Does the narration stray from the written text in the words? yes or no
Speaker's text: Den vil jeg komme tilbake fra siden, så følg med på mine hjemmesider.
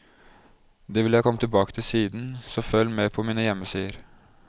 yes